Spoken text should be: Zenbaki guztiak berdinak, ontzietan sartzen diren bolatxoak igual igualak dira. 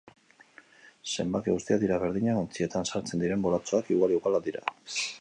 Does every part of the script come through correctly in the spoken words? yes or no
no